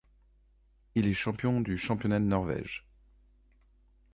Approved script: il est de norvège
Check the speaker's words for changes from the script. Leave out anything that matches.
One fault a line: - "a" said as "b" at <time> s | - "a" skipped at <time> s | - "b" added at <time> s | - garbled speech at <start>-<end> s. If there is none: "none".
- "champion du championnat" added at 1.1 s